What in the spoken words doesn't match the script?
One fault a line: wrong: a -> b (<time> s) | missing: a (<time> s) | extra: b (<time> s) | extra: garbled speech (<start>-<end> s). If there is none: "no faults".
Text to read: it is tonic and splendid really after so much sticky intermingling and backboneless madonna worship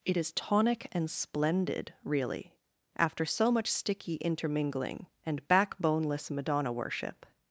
no faults